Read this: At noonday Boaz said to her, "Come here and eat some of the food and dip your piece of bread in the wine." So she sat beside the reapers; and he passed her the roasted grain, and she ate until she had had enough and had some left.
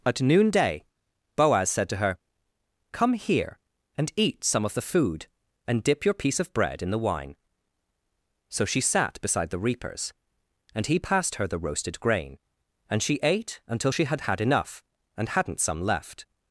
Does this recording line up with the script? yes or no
no